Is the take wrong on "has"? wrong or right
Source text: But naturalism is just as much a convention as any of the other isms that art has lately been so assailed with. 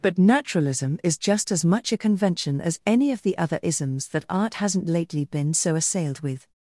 wrong